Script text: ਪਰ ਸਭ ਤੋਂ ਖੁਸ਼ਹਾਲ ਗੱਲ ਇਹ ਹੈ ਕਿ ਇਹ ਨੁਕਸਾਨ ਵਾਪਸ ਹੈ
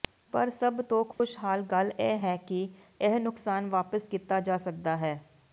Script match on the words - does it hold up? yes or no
no